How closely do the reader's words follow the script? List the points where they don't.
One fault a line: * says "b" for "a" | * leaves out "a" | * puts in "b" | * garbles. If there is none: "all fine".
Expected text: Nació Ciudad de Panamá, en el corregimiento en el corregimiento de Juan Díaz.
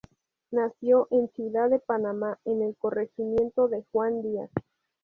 * puts in "en"
* leaves out "en el corregimiento"